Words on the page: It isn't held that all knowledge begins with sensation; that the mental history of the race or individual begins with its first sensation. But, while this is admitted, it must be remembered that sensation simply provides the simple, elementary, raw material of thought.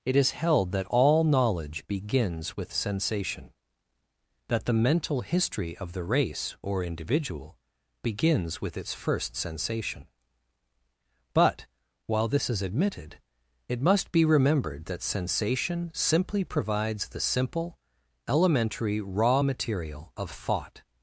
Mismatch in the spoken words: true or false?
true